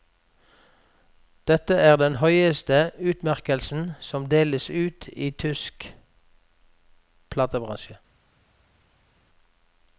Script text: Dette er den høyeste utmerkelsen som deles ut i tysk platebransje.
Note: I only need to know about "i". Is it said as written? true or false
true